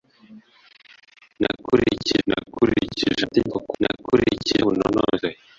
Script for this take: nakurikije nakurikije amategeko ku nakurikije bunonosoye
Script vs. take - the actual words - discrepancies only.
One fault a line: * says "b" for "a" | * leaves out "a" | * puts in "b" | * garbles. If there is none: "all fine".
all fine